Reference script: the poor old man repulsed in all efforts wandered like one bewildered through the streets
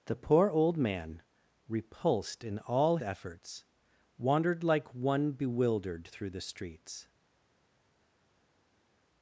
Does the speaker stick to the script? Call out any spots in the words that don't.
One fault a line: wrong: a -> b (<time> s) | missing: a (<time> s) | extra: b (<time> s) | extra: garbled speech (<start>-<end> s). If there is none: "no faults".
no faults